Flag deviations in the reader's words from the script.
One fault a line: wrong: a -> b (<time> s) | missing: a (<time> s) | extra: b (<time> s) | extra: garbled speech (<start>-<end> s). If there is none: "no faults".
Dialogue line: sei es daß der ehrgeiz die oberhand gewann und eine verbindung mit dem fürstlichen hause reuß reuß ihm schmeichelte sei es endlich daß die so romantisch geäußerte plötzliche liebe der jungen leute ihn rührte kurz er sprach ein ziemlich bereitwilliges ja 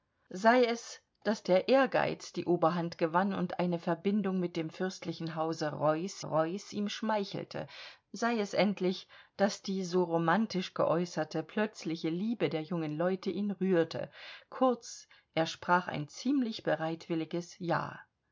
no faults